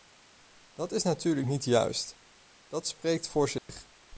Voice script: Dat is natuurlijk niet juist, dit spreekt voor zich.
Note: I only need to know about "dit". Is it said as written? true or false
false